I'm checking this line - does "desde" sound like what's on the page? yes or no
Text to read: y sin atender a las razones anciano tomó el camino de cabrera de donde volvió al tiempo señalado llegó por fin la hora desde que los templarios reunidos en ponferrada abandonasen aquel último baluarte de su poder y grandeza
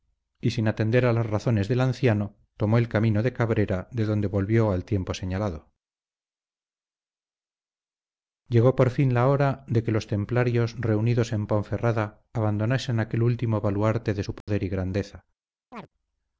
no